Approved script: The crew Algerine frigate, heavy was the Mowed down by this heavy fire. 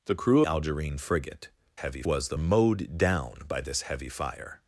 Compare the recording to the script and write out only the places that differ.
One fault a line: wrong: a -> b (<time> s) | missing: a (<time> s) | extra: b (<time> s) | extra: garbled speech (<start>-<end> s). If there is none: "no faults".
no faults